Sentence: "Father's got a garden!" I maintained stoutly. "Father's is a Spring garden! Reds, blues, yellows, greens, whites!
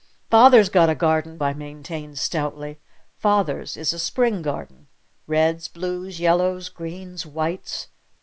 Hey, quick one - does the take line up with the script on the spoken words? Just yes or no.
yes